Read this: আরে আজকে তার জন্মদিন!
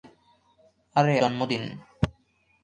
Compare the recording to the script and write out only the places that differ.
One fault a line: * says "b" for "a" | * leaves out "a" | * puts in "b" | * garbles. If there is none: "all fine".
* leaves out "আজকে তার"